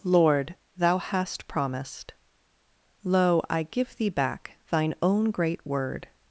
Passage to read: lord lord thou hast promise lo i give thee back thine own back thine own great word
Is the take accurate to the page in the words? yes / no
no